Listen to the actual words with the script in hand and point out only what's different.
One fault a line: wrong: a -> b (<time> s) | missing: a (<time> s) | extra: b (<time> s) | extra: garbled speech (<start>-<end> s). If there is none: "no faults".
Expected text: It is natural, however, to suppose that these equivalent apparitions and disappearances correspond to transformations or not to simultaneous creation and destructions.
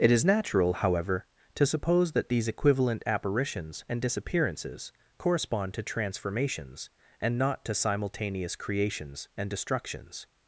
wrong: or -> and (7.2 s)
wrong: creation -> creations (8.5 s)